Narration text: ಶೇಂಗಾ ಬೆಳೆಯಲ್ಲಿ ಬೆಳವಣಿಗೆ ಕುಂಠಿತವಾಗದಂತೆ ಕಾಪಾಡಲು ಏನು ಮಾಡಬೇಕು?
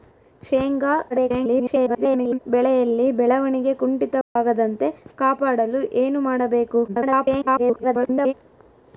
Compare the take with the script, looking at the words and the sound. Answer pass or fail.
fail